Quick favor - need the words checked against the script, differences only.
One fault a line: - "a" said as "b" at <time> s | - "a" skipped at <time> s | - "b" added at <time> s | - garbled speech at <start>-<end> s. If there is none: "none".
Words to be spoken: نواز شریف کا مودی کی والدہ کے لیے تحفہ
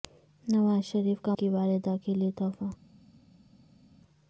- "مودی" skipped at 1.4 s